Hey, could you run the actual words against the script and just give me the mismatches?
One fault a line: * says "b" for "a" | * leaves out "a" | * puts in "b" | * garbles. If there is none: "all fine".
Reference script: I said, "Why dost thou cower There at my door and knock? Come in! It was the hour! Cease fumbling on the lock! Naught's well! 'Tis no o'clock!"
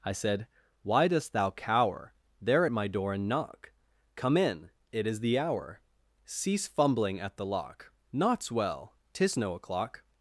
* says "is" for "was"
* says "at" for "on"